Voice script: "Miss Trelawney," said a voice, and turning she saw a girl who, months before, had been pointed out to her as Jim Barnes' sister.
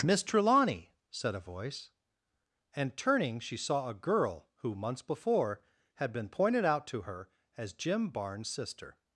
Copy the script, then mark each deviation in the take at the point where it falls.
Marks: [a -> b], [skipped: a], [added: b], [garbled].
"Miss Trelawney," said a voice, and turning she saw a girl who, months before, had been pointed out to her as Jim Barnes' sister.